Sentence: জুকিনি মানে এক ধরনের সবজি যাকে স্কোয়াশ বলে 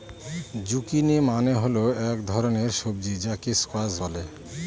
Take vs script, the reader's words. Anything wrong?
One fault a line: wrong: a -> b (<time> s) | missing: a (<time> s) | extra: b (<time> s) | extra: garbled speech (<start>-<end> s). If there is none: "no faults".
extra: হল (1.5 s)